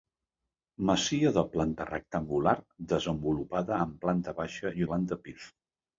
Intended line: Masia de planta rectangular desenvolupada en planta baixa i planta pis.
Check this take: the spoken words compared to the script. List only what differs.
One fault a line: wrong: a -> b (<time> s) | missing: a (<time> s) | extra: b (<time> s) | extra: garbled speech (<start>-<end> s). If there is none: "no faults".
no faults